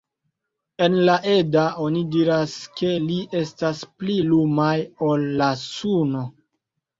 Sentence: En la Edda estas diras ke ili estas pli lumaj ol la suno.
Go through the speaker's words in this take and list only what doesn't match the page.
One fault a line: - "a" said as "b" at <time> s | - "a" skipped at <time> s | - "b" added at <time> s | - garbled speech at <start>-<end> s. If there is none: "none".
- "estas" said as "oni" at 1.9 s